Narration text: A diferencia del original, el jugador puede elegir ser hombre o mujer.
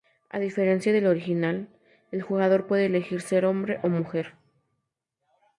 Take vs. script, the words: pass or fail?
pass